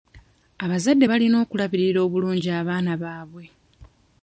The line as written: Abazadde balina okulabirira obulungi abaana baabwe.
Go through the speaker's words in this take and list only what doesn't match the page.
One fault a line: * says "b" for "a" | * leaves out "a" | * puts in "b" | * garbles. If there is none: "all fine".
all fine